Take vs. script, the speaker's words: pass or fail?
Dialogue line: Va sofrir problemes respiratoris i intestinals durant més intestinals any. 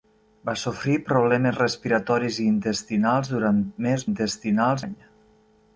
pass